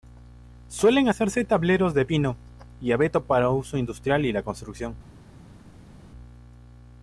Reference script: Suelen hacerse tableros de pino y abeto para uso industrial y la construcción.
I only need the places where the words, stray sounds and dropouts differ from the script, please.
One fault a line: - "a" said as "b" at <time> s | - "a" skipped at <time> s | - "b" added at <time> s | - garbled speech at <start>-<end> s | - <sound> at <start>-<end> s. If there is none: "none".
none